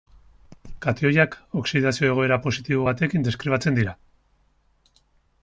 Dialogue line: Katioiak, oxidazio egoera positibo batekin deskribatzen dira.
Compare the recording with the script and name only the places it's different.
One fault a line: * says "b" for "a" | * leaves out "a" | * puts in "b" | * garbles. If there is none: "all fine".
all fine